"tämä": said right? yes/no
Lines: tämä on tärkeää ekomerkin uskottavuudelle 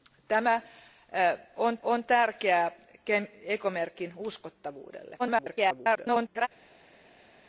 yes